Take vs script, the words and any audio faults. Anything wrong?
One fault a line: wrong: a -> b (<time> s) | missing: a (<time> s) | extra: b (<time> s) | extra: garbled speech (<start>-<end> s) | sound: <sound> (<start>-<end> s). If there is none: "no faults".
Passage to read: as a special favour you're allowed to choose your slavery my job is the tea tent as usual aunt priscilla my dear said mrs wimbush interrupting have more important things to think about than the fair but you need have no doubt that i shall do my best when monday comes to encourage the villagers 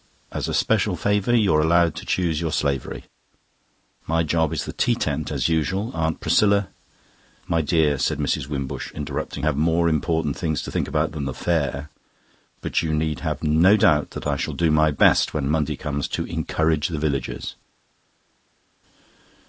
no faults